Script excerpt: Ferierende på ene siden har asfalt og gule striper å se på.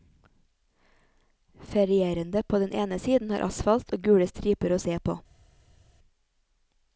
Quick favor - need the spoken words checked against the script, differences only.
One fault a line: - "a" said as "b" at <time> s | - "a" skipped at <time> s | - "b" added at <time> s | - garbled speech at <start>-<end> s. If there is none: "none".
- "den" added at 2.6 s